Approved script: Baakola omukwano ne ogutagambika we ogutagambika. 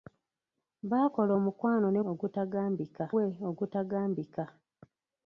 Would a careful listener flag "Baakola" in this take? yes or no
no